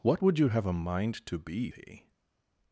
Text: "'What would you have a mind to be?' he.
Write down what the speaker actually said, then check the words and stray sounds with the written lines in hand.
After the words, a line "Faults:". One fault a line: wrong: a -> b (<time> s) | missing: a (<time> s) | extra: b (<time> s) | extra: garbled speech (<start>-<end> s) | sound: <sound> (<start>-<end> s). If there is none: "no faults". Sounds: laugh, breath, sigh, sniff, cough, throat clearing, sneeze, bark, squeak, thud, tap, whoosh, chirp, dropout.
"'What would you have a mind to be?' he.
Faults:
no faults